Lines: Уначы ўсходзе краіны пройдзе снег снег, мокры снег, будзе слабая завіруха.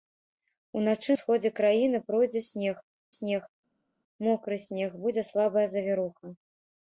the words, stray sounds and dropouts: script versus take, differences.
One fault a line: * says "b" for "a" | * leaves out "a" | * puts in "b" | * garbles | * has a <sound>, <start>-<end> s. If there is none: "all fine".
all fine